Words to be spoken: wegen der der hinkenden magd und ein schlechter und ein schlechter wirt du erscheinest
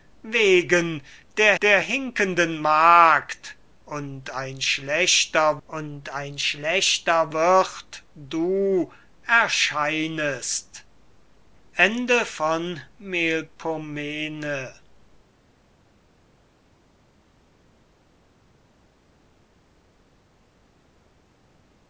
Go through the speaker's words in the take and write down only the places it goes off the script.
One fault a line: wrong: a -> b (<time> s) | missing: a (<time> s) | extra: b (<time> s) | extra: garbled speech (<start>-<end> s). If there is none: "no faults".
no faults